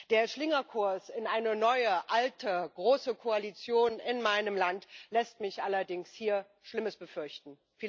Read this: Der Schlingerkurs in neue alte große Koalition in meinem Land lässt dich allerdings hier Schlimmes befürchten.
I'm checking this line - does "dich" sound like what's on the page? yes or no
no